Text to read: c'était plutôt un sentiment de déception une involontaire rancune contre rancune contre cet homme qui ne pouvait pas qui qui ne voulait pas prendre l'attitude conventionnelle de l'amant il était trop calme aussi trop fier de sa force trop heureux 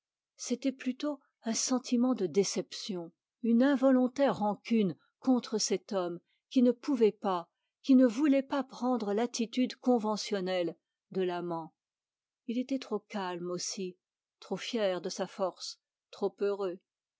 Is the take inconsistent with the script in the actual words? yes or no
yes